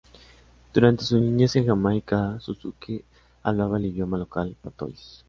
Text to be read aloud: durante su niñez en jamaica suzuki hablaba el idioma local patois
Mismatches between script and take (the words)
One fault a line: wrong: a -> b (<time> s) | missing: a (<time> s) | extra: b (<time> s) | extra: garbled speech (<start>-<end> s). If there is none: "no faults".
no faults